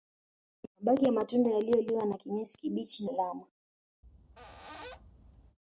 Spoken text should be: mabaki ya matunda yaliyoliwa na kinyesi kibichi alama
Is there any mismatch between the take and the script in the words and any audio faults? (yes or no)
yes